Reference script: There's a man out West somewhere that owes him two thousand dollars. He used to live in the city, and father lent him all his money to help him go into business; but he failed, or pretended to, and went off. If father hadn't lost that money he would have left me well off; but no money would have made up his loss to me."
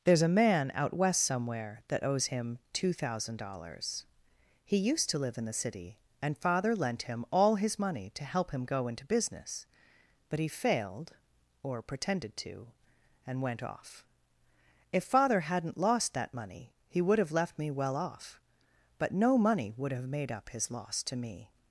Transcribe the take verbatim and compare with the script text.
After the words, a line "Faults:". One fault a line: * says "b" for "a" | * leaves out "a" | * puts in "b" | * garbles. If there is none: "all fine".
There's a man out West somewhere that owes him two thousand dollars. He used to live in the city, and father lent him all his money to help him go into business; but he failed, or pretended to, and went off. If father hadn't lost that money he would have left me well off; but no money would have made up his loss to me."
Faults:
all fine